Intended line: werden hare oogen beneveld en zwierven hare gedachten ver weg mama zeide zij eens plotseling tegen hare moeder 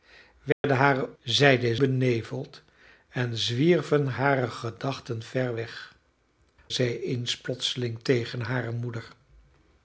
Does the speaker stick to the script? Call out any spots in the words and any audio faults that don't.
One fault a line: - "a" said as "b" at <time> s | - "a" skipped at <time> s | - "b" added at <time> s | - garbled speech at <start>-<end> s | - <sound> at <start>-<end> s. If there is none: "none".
- dropout at 0.5-0.6 s
- "oogen" said as "zeide" at 1.2 s
- "mama zeide" skipped at 5.9 s